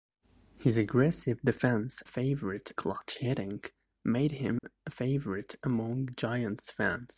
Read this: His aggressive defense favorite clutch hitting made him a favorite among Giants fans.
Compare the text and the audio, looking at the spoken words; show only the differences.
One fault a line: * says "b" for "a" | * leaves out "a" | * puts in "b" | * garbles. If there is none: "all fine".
all fine